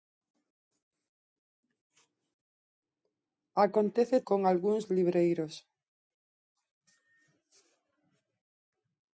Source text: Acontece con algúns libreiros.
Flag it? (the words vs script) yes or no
no